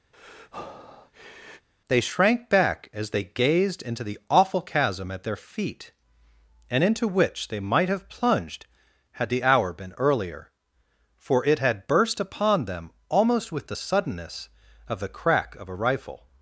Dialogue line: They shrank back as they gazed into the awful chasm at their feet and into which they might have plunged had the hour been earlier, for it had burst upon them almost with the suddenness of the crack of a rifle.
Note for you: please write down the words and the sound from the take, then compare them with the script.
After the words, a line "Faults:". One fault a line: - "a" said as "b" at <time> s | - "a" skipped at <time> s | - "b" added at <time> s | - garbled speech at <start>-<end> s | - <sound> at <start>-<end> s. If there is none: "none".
They shrank back as they gazed into the awful chasm at their feet and into which they might have plunged had the hour been earlier, for it had burst upon them almost with the suddenness of the crack of a rifle.
Faults:
- breath at 0.1-1.7 s